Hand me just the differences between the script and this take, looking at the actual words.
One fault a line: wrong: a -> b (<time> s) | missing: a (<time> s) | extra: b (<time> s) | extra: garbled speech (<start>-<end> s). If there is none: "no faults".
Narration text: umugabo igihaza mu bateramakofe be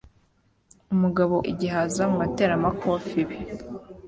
no faults